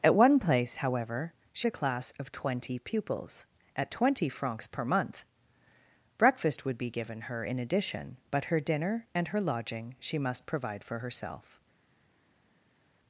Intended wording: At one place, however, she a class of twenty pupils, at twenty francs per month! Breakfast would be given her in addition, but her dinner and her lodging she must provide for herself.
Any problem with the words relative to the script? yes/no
no